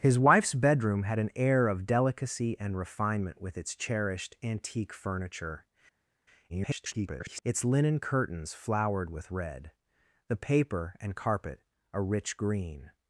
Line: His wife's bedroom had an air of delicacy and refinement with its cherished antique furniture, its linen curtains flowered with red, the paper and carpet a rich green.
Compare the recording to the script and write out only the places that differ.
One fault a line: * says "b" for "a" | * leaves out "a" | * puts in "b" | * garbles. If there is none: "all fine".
* garbles